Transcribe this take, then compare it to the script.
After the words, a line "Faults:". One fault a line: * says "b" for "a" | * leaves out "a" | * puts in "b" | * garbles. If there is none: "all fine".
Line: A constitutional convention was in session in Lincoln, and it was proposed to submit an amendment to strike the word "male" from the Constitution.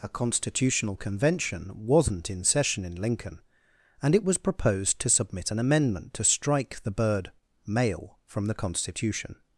A constitutional convention wasn't in session in Lincoln, and it was proposed to submit an amendment to strike the bird "male" from the Constitution.
Faults:
* says "wasn't" for "was"
* says "bird" for "word"